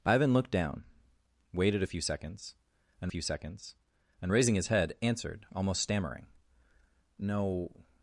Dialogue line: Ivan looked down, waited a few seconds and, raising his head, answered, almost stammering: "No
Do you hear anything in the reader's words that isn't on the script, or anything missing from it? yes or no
yes